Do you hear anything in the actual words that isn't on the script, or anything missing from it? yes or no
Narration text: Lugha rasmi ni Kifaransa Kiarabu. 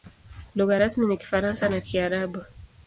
yes